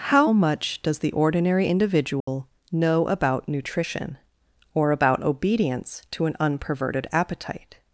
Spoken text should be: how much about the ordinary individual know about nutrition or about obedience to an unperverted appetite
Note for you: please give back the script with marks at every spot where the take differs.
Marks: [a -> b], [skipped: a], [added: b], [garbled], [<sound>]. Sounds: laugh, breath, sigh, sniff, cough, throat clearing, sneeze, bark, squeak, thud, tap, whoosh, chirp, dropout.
how much [about -> does] the ordinary individual [dropout] know about nutrition or about obedience to an unperverted appetite